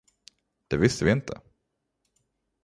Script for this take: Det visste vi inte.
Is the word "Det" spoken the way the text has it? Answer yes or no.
yes